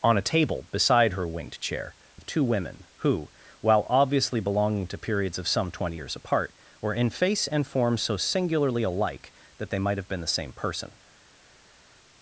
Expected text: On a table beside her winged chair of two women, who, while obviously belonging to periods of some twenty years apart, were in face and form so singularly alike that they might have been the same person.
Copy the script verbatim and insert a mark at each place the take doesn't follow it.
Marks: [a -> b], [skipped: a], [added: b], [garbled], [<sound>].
On a table beside her winged chair of two women, who, while obviously belonging to periods of some twenty years apart, were in face and form so singularly alike that they might have been the same person.